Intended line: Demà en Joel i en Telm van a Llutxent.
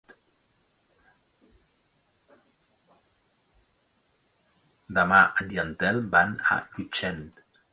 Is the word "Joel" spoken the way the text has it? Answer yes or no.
no